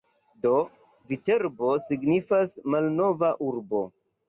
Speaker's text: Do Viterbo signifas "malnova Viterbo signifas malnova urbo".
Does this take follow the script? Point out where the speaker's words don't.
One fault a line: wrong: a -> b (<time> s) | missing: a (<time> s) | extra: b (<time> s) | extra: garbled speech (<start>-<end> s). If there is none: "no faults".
missing: Viterbo signifas malnova (3.4 s)